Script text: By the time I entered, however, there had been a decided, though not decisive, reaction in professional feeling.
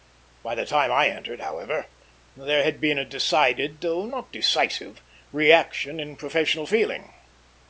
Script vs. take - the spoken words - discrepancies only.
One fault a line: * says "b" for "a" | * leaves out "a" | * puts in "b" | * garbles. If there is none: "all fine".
all fine